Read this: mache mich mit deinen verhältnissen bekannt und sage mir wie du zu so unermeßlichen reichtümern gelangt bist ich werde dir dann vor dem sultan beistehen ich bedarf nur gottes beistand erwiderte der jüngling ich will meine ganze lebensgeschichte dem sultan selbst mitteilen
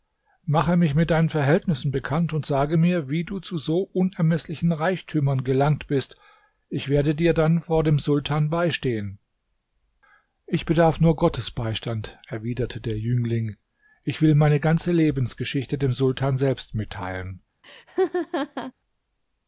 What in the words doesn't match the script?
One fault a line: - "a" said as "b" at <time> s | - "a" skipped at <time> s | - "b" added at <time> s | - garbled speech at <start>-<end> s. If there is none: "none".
none